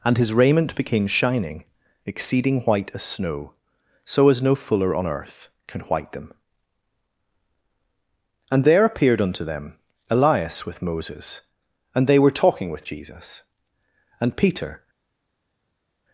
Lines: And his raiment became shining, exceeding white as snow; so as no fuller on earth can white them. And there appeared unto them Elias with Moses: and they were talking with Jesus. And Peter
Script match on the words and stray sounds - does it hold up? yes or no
yes